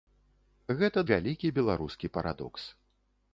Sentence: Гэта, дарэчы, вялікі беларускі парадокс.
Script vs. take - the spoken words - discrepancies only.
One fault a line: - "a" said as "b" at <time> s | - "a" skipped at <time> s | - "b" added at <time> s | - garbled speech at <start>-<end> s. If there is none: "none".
- "дарэчы" skipped at 1.0 s